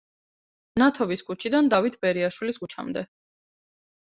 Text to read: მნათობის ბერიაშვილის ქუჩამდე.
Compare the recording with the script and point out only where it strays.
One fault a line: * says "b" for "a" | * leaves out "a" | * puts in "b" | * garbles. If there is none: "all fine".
* puts in "ქუჩიდან დავით"